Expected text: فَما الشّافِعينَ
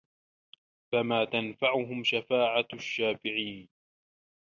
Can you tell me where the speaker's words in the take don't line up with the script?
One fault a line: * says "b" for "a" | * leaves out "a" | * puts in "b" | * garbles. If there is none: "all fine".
* puts in "تَنفَعُهُم شَفاعَةُ"